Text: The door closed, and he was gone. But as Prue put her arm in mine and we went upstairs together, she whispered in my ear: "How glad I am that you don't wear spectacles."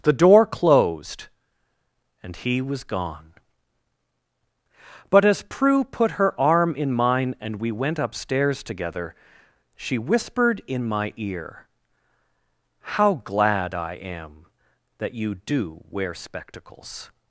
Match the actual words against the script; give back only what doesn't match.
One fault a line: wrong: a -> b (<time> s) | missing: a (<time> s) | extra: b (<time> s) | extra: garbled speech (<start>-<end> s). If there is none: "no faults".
wrong: don't -> do (15.3 s)